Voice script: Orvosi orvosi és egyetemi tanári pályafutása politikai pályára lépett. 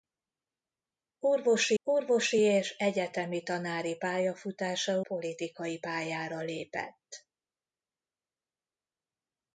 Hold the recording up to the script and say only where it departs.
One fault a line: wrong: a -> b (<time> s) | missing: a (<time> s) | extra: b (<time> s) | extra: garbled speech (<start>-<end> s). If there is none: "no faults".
no faults